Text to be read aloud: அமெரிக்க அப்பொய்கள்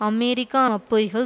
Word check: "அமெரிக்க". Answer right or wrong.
right